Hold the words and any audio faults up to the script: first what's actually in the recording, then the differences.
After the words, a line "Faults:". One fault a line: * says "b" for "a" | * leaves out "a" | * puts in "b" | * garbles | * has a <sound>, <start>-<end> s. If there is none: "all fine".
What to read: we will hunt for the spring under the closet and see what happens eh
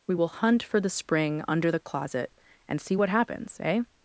we will hunt for the spring under the closet and see what happens eh
Faults:
all fine